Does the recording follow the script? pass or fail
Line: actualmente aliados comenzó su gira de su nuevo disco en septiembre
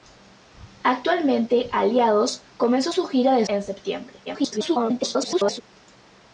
fail